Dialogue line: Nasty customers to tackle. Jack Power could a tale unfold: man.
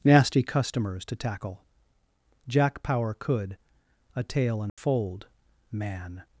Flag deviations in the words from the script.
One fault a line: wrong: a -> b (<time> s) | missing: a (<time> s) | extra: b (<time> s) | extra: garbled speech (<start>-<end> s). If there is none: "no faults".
no faults